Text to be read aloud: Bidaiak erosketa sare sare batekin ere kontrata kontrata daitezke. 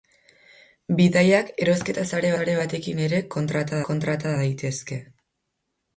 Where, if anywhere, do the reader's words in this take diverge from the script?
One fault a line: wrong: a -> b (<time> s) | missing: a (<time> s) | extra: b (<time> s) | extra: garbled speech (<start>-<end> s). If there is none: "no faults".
no faults